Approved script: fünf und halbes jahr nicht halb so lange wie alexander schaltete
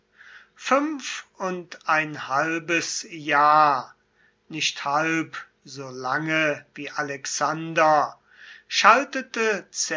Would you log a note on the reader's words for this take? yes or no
yes